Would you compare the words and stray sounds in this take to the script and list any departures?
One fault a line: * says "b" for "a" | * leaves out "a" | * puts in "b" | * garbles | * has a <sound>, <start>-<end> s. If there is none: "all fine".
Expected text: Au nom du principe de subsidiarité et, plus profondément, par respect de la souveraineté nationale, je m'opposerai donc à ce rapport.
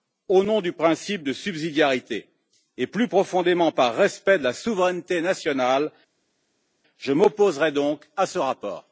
all fine